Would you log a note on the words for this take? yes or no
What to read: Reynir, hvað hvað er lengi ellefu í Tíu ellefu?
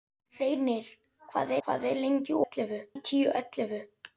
no